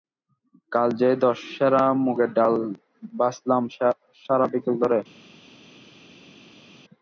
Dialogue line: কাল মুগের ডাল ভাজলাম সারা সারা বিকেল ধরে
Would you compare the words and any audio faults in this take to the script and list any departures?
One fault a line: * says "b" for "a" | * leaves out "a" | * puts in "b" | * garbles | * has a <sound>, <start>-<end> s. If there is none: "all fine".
* puts in "যে দশ সেরা"
* leaves out "সারা"